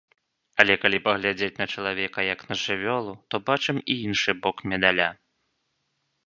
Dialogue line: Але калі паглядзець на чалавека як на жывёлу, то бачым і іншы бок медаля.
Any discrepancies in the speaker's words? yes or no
no